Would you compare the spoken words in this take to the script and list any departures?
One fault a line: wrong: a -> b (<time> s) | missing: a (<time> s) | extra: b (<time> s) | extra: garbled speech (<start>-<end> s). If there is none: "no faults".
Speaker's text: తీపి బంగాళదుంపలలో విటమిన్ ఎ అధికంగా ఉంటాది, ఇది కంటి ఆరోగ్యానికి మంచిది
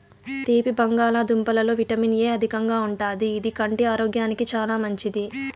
extra: చానా (4.5 s)